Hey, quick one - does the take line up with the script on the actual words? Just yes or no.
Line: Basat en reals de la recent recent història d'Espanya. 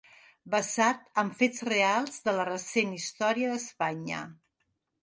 no